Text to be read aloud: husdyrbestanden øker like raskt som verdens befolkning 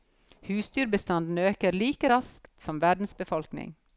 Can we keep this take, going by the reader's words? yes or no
yes